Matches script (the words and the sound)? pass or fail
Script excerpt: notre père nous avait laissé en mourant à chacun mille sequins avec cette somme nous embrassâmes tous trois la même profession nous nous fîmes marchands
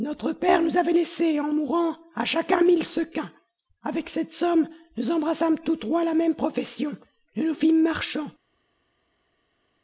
pass